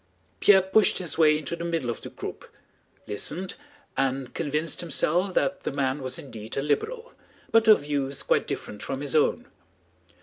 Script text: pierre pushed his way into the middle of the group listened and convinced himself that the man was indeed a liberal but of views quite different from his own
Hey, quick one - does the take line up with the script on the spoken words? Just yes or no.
yes